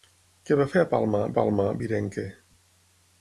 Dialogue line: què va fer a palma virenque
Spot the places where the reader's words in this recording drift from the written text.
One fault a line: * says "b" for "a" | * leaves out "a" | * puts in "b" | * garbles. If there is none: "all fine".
* puts in "palma"